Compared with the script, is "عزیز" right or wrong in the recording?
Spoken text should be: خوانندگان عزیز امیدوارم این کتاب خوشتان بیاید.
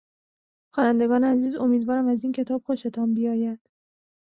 right